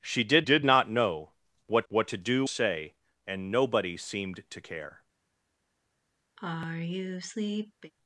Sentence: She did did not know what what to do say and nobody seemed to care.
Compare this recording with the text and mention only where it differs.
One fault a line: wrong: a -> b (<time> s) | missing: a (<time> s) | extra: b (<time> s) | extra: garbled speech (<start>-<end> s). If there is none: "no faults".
no faults